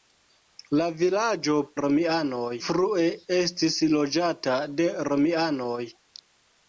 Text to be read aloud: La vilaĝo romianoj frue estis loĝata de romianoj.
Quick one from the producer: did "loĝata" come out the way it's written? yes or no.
yes